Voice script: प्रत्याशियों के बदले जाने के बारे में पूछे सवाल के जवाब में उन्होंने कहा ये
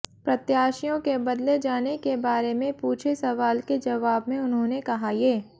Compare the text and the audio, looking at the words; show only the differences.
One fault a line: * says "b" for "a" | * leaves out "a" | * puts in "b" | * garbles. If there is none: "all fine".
all fine